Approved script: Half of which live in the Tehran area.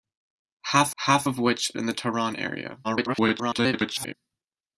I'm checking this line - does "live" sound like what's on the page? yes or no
no